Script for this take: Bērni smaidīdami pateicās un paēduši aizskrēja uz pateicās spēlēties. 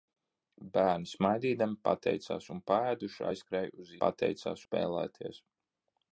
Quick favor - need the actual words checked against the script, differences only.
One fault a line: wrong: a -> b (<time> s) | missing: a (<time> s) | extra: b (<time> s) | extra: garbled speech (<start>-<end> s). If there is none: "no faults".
no faults